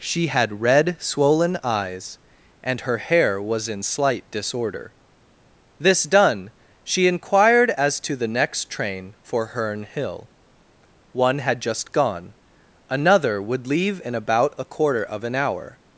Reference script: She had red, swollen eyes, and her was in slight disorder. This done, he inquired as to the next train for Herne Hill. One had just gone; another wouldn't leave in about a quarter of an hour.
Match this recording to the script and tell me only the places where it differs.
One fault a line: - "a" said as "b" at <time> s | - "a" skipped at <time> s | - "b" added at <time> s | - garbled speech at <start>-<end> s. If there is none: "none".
- "hair" added at 3.0 s
- "he" said as "she" at 6.8 s
- "wouldn't" said as "would" at 13.4 s